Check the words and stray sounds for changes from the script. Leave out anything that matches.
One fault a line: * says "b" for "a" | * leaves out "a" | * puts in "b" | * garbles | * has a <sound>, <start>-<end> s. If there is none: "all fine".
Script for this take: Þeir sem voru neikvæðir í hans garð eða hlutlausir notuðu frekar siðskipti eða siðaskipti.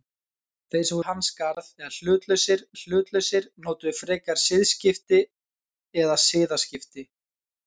* leaves out "voru neikvæðir"
* puts in "hlutlausir"